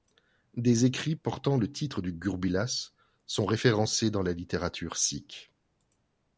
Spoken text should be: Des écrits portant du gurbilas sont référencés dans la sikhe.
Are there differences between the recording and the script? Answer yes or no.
yes